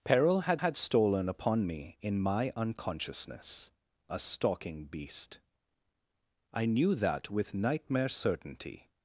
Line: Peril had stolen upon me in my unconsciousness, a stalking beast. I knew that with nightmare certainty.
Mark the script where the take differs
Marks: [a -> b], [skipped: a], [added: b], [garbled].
Peril had [added: had] stolen upon me in my unconsciousness, a stalking beast. I knew that with nightmare certainty.